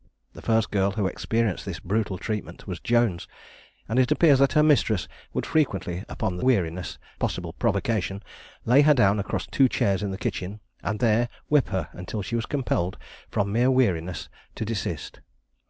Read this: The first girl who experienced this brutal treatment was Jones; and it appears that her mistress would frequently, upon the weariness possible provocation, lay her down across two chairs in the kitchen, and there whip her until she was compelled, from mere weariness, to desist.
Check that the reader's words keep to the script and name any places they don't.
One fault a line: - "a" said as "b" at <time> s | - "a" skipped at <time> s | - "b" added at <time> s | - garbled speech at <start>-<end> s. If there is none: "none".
none